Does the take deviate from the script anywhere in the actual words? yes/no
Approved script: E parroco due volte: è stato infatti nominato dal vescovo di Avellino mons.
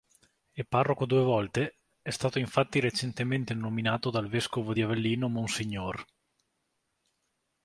yes